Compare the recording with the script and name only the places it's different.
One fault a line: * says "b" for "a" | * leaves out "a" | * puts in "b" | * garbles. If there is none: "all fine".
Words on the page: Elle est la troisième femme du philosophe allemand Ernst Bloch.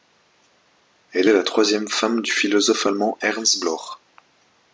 all fine